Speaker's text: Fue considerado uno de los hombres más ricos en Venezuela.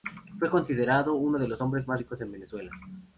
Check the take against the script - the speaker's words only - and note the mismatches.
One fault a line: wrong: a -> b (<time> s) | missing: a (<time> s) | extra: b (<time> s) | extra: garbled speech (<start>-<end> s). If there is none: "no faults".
no faults